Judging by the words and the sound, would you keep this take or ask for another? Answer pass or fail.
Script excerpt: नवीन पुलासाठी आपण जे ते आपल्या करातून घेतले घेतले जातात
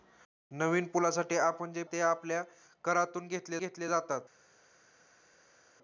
pass